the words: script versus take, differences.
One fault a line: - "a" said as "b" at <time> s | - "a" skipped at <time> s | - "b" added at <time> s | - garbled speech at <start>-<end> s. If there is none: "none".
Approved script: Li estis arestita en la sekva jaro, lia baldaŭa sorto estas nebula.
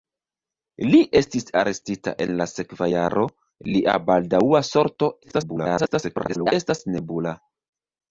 - garbled speech at 5.2-6.5 s